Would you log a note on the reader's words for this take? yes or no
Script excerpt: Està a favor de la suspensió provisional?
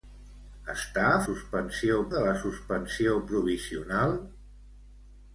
yes